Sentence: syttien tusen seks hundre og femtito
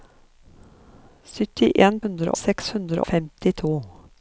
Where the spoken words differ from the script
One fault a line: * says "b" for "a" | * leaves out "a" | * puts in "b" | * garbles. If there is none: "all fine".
* says "hundre" for "tusen"
* leaves out "og"